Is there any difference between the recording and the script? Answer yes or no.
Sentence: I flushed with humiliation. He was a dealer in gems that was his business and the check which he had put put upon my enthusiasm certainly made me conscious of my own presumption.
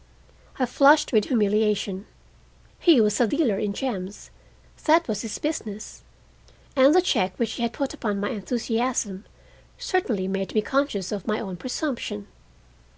yes